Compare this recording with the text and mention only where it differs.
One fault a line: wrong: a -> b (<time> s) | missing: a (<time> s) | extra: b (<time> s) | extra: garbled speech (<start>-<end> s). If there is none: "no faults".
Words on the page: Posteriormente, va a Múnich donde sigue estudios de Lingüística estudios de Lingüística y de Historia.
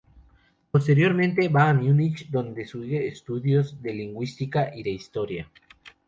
missing: estudios de Lingüística (4.8 s)